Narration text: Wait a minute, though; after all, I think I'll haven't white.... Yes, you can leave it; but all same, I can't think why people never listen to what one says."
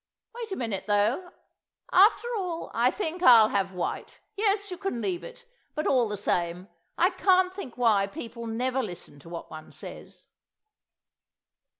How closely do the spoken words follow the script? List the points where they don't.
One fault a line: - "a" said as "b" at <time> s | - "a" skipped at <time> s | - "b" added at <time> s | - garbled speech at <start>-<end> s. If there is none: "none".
- "haven't" said as "have" at 3.5 s
- "the" added at 6.1 s